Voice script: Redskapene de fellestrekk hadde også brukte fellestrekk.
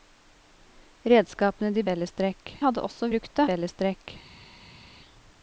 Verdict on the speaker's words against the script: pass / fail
pass